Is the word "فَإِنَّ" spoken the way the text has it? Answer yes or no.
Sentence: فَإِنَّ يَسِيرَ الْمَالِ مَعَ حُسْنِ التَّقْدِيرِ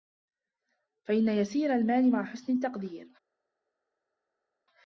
yes